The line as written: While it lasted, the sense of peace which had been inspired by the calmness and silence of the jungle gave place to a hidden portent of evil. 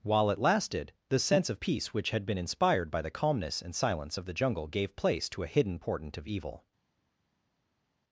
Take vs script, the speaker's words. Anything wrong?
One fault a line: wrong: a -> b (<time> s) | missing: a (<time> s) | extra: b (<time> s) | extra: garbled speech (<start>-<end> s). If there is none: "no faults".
no faults